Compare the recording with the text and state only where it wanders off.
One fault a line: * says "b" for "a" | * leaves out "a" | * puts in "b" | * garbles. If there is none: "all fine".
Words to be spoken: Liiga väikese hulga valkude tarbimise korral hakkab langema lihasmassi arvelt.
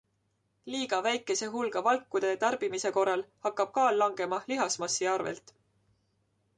* puts in "kaal"